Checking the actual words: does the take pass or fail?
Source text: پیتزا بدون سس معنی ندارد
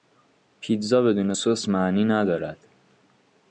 pass